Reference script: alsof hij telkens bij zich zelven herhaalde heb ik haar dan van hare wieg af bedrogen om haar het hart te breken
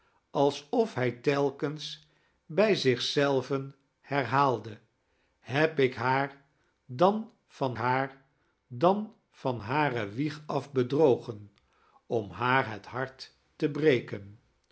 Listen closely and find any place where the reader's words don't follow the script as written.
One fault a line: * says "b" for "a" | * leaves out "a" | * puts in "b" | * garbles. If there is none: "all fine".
* puts in "haar dan van"